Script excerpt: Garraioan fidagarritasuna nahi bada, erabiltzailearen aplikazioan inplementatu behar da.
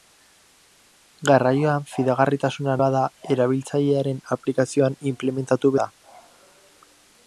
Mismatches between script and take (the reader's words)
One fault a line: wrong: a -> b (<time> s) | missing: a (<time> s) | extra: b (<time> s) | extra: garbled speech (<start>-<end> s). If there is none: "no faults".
missing: nahi (2.8 s)
missing: behar (5.8 s)